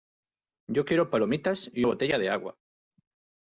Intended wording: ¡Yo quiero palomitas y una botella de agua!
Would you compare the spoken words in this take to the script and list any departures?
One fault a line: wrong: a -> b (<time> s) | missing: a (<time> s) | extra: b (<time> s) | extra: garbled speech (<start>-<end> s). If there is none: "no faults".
missing: una (1.9 s)